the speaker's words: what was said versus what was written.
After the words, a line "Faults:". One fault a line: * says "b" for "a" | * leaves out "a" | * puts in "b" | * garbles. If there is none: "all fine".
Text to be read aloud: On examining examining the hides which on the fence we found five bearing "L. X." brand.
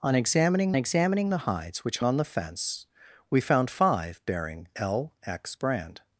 On examining examining the hides which on the fence we found five bearing "L. X." brand.
Faults:
all fine